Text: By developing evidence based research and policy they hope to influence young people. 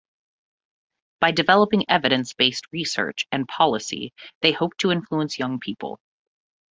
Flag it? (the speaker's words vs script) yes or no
no